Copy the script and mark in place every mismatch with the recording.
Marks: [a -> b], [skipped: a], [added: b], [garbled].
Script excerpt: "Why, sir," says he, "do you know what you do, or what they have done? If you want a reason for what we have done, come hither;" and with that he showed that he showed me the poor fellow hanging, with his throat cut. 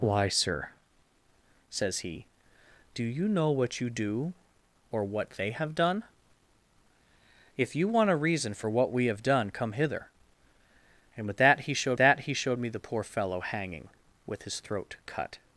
"Why, sir," says he, "do you know what you do, or what they have done? If you want a reason for what we have done, come hither;" and with that he showed that he showed me the poor fellow hanging, with his throat cut.